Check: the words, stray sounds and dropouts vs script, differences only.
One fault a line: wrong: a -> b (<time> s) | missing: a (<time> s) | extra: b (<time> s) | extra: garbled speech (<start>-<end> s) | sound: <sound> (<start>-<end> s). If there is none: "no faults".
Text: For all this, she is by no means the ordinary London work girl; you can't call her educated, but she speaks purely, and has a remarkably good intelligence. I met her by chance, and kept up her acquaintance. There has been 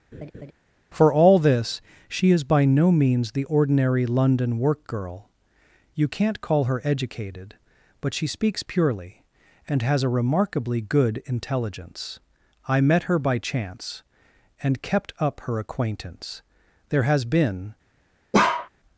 sound: laugh (0.1-0.5 s)
sound: bark (18.3-18.7 s)